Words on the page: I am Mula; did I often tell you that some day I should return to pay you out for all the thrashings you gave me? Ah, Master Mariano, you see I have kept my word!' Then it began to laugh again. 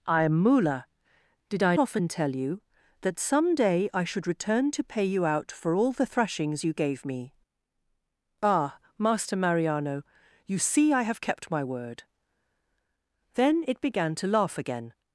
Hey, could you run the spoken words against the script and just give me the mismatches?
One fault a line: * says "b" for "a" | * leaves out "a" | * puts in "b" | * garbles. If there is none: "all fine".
all fine